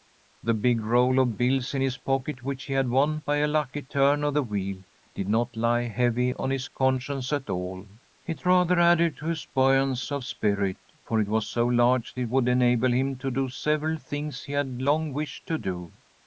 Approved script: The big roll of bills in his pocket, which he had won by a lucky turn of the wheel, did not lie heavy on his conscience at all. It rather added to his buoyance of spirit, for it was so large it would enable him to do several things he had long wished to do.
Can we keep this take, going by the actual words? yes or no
yes